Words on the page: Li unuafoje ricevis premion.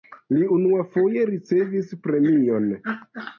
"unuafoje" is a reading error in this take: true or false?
false